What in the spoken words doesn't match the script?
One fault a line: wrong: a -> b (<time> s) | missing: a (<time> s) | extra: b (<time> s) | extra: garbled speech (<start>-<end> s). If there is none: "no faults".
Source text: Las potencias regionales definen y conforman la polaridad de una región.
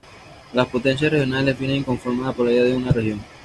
no faults